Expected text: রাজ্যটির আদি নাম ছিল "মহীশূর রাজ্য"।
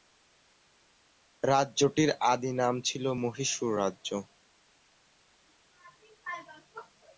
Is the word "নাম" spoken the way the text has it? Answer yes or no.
yes